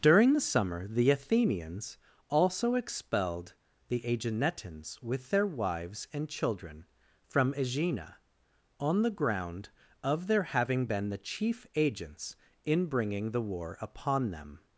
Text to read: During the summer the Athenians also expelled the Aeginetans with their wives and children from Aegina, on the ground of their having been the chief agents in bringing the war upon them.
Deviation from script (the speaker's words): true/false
false